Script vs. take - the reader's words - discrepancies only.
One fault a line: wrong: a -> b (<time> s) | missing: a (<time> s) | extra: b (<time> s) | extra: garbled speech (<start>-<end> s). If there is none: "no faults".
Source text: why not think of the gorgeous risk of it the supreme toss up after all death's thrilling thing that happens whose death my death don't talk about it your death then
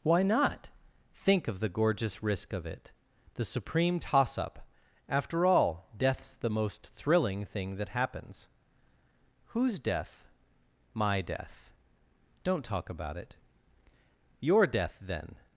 extra: the most (6.3 s)